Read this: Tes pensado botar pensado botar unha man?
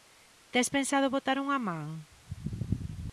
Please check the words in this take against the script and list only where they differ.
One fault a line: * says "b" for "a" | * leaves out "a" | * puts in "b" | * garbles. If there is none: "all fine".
* leaves out "pensado botar"